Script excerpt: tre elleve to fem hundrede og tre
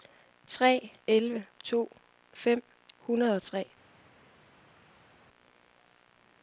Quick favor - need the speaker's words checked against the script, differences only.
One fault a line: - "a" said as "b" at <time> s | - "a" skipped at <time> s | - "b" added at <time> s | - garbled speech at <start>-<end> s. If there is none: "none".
none